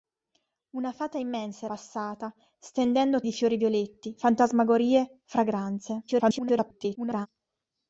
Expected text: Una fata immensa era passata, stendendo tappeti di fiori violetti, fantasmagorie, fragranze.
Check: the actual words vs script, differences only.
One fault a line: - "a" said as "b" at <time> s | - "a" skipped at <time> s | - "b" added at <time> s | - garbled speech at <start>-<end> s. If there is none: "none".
- "era" skipped at 1.6 s
- "tappeti" skipped at 3.2 s
- garbled speech at 6.1-7.3 s